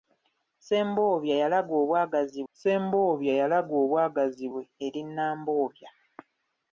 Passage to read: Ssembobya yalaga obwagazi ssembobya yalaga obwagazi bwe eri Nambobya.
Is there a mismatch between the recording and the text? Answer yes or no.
no